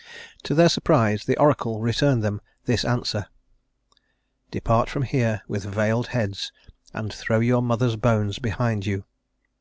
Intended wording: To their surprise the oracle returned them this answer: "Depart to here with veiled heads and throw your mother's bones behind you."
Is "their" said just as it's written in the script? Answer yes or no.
yes